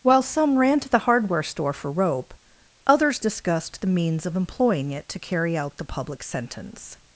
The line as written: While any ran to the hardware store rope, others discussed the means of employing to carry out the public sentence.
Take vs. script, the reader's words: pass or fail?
fail